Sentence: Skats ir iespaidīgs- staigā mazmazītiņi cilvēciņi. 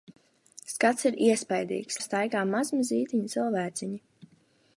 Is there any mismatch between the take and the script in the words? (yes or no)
no